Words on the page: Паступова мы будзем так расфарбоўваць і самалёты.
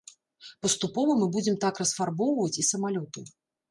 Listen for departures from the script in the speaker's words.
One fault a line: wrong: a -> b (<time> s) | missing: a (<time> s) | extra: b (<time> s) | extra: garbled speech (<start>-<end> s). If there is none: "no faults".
no faults